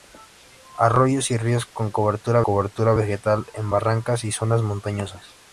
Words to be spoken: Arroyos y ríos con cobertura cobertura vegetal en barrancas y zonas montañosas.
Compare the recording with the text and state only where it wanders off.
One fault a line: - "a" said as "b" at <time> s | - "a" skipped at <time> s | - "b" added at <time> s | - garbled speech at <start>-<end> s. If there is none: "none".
none